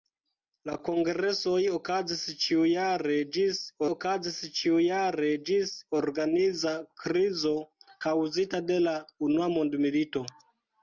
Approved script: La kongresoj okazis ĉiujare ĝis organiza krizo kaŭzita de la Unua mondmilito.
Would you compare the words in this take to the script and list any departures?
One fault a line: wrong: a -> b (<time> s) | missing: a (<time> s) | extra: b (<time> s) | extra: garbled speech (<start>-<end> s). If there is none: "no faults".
extra: okazis ĉiujare ĝis (3.9 s)